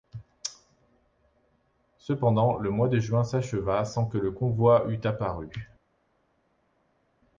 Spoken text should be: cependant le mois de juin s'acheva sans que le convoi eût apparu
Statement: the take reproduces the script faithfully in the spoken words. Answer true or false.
true